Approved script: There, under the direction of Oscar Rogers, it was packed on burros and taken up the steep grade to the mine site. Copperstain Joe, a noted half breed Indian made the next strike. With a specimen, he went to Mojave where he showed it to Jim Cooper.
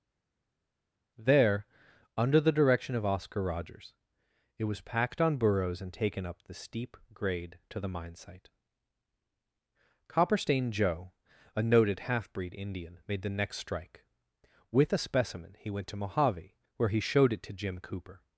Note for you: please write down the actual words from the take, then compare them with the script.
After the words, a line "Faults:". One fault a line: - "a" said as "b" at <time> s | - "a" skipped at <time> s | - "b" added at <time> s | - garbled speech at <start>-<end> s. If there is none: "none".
There, under the direction of Oscar Rogers, it was packed on burros and taken up the steep grade to the mine site. Copperstain Joe, a noted half breed Indian made the next strike. With a specimen, he went to Mojave where he showed it to Jim Cooper.
Faults:
none